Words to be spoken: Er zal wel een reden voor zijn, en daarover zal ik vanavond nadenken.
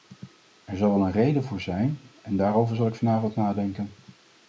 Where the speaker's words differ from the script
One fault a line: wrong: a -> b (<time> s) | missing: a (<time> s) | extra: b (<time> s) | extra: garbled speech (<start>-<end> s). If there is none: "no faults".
no faults